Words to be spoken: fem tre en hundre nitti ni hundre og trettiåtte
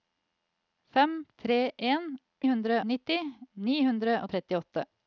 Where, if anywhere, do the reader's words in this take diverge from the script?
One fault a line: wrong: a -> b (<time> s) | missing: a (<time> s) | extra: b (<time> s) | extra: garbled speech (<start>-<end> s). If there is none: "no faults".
no faults